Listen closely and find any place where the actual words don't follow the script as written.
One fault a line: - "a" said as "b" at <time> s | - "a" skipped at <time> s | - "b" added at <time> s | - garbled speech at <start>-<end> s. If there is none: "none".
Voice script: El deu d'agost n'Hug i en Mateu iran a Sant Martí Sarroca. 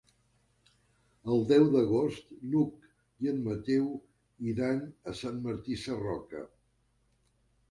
none